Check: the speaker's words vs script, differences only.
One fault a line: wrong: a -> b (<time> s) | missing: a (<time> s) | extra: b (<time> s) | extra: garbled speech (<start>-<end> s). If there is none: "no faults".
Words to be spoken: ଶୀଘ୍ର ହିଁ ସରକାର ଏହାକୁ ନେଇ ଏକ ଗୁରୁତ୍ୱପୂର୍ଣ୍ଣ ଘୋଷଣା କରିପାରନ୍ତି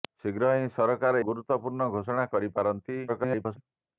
missing: ଏହାକୁ ନେଇ ଏକ (1.2 s)
extra: garbled speech (3.1-3.6 s)